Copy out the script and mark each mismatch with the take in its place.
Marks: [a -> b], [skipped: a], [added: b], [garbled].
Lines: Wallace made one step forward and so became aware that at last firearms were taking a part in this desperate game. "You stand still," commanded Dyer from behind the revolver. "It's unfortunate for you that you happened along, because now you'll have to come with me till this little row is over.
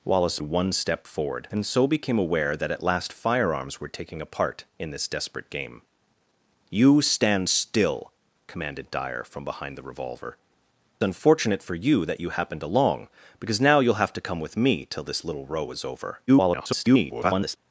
Wallace [skipped: made] one step forward and so became aware that at last firearms were taking a part in this desperate game. "You stand still," commanded Dyer from behind the revolver. [skipped: "It's] unfortunate for you that you happened along, because now you'll have to come with me till this little row is over. [garbled]